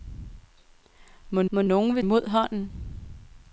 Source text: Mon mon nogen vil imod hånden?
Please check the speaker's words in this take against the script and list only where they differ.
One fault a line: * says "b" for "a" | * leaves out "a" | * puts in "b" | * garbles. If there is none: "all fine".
all fine